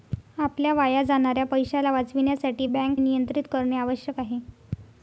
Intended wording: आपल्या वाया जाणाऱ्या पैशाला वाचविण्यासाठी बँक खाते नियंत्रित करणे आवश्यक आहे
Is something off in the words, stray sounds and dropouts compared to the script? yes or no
yes